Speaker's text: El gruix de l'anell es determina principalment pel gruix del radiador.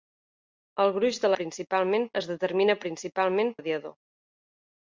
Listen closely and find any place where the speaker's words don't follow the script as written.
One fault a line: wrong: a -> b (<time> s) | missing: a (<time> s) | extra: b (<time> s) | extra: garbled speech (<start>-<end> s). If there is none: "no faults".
wrong: l'anell -> principalment (1.4 s)
missing: pel gruix del (3.6 s)